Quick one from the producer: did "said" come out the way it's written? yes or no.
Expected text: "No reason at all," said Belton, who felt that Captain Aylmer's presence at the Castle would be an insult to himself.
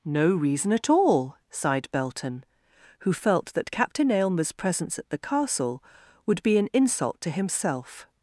no